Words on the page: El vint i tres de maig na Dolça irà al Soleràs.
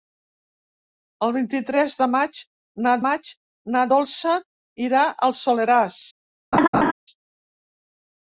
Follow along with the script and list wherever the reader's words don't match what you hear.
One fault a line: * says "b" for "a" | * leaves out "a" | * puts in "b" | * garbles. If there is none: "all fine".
* puts in "maig na"